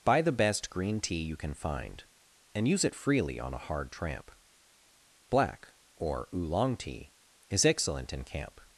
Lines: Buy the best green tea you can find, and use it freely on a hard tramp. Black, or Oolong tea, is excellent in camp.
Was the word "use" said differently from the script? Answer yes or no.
no